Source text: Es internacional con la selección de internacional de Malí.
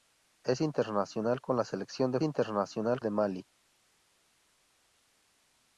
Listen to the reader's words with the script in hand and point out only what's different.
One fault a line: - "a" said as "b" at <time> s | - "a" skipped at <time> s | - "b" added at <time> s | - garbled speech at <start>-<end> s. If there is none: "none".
none